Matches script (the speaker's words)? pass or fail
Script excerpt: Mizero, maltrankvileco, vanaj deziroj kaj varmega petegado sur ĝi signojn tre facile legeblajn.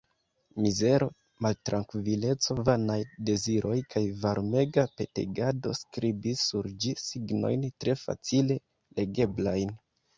fail